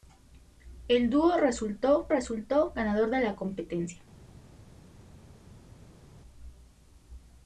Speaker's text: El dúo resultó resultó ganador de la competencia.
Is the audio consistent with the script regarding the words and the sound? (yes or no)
yes